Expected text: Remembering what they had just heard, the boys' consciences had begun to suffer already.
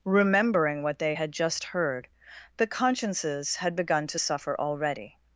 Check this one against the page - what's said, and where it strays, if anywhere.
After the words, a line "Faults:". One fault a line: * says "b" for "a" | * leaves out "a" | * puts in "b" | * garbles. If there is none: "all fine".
Remembering what they had just heard, the' consciences had begun to suffer already.
Faults:
* leaves out "boys"